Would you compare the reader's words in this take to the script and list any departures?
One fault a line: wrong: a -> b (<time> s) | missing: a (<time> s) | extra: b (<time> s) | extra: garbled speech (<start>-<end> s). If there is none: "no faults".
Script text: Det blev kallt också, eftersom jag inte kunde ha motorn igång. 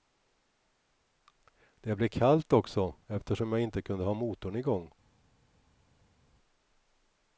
no faults